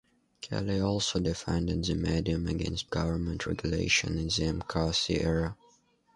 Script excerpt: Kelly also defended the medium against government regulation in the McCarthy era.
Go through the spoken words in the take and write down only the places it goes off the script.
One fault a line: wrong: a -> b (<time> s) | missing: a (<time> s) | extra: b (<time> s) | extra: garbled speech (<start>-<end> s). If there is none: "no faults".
no faults